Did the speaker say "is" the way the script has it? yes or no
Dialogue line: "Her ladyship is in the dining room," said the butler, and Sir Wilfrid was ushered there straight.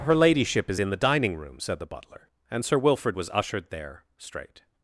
yes